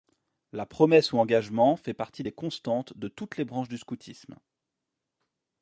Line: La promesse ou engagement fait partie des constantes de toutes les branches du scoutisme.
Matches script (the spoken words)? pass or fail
pass